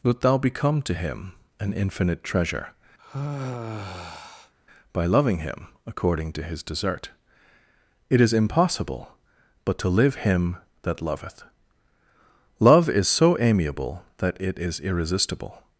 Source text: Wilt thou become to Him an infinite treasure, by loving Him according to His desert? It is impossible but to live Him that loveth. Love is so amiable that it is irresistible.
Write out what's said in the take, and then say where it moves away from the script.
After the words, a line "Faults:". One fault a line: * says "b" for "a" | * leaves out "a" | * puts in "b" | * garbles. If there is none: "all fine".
Wilt thou become to Him an infinite treasure, by loving Him according to His desert? It is impossible but to live Him that loveth. Love is so amiable that it is irresistible.
Faults:
all fine